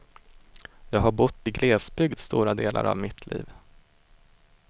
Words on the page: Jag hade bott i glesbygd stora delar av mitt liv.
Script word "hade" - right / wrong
wrong